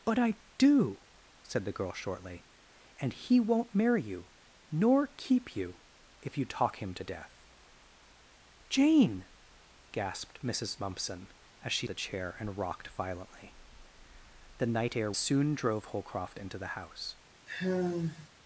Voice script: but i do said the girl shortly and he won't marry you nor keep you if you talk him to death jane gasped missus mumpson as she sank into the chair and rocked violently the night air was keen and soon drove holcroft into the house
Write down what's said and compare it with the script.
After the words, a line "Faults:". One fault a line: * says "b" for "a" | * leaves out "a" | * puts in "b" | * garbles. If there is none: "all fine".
but i do said the girl shortly and he won't marry you nor keep you if you talk him to death jane gasped missus mumpson as she the chair and rocked violently the night air soon drove holcroft into the house
Faults:
* leaves out "sank into"
* leaves out "was keen and"